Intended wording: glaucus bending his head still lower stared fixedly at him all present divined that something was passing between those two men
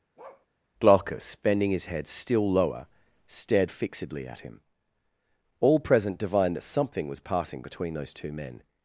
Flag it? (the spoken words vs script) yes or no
no